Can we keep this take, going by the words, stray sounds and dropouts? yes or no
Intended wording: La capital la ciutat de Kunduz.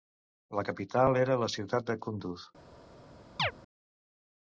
no